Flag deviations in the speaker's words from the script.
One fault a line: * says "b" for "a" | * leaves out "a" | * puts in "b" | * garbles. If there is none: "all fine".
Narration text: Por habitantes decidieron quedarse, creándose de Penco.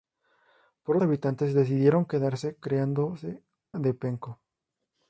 all fine